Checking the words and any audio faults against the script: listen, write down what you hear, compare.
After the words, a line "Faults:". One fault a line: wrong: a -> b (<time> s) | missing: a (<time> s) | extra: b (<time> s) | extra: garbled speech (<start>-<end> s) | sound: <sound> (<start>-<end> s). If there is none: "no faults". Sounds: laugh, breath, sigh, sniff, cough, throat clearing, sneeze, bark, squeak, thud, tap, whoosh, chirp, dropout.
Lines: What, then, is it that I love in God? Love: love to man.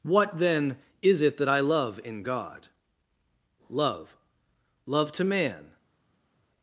What, then, is it that I love in God? Love: love to man.
Faults:
no faults